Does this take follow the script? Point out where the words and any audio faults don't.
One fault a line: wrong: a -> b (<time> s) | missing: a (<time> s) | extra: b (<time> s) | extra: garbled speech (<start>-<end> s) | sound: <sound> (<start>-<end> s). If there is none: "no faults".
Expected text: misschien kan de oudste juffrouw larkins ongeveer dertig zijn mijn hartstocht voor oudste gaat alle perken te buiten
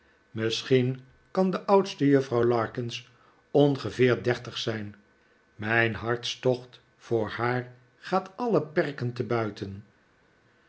wrong: oudste -> haar (7.3 s)